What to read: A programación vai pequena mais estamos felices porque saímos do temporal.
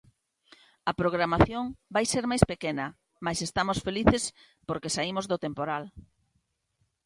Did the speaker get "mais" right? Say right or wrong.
right